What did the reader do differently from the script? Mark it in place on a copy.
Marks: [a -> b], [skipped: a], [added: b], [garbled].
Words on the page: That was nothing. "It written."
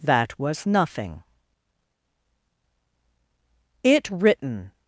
That was nothing. "It written."